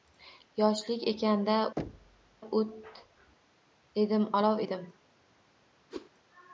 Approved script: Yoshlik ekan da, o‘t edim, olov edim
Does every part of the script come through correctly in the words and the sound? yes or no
no